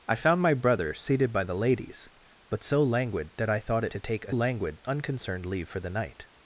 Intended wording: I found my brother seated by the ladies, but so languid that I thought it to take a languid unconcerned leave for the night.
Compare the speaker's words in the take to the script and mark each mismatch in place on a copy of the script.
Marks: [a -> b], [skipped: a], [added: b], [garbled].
I found my brother seated by the ladies, but so languid that I thought it to take a languid unconcerned leave for the night.